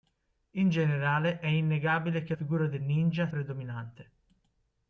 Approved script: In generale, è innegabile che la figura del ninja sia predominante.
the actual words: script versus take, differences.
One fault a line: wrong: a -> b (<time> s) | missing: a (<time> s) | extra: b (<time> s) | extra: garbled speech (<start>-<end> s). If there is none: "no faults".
missing: la (2.3 s)
missing: sia (3.3 s)